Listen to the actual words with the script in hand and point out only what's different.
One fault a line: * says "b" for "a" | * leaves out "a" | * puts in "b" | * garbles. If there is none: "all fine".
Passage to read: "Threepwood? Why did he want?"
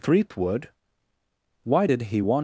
all fine